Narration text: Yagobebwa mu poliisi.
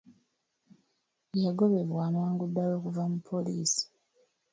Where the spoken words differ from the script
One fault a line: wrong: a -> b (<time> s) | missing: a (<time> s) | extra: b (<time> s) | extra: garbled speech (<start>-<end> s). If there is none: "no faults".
extra: amangu ddala okuva (2.1 s)